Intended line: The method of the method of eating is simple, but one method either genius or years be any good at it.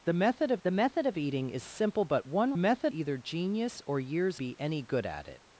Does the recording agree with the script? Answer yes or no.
yes